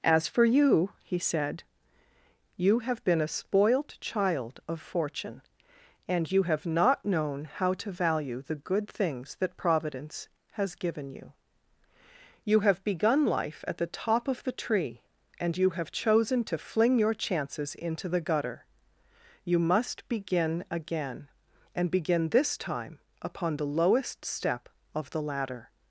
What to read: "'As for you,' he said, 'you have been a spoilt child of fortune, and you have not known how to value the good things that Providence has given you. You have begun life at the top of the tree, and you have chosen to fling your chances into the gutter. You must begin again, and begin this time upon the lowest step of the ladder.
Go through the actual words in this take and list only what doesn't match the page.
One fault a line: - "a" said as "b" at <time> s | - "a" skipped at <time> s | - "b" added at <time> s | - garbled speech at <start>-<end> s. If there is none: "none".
none